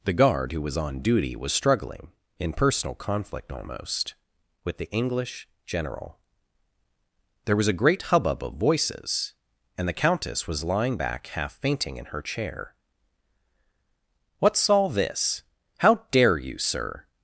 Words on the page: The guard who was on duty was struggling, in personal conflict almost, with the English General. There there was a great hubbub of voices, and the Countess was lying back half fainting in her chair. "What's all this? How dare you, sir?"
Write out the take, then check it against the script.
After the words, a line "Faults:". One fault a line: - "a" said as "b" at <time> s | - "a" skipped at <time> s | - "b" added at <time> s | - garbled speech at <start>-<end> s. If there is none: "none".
The guard who was on duty was struggling, in personal conflict almost, with the English General. There was a great hubbub of voices, and the Countess was lying back half fainting in her chair. "What's all this? How dare you, sir?"
Faults:
- "there" skipped at 7.6 s